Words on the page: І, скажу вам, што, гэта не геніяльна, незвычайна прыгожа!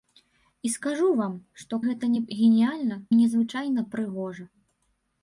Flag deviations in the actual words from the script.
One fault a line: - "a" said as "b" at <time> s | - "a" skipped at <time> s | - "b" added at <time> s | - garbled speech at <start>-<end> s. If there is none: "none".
none